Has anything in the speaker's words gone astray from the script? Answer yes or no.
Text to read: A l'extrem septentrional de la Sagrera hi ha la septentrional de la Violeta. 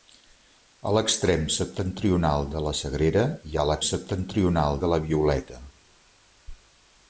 no